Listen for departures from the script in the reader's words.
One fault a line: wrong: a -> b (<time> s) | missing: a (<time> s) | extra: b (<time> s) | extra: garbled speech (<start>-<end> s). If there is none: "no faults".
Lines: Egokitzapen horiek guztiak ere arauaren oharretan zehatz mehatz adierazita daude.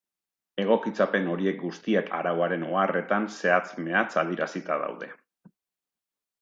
missing: ere (2.1 s)